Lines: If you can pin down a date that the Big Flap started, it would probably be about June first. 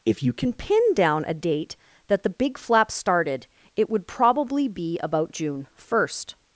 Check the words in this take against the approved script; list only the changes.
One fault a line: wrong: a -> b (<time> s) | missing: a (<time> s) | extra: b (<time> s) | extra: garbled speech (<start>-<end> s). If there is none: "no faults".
no faults